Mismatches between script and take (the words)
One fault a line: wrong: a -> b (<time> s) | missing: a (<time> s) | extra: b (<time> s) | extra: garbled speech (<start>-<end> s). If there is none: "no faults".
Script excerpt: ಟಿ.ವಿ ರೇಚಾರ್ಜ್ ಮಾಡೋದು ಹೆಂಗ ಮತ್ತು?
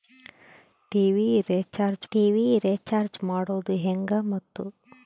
extra: ಟಿ.ವಿ ರೇಚಾರ್ಜ್ (2.1 s)